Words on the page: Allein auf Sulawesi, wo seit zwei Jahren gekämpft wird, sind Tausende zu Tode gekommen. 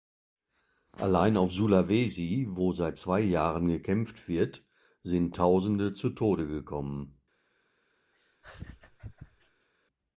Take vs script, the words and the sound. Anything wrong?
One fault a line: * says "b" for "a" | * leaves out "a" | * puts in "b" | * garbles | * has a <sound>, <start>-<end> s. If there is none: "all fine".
* has a laugh, 8.1-9.7 s